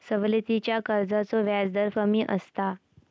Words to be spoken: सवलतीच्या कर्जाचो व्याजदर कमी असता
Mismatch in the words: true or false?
false